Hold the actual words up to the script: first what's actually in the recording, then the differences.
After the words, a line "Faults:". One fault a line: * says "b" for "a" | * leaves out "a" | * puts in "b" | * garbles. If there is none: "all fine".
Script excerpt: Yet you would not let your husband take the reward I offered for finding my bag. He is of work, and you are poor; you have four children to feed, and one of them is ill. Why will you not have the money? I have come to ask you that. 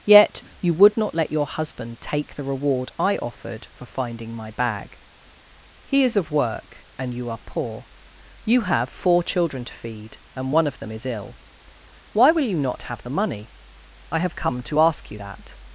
Yet you would not let your husband take the reward I offered for finding my bag. He is of work, and you are poor; you have four children to feed, and one of them is ill. Why will you not have the money? I have come to ask you that.
Faults:
all fine